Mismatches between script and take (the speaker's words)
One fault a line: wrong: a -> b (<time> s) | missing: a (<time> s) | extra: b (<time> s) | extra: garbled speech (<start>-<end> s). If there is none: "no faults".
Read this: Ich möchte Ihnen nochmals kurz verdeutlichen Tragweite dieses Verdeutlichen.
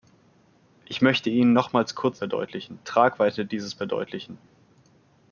no faults